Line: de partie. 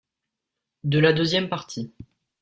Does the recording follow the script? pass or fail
fail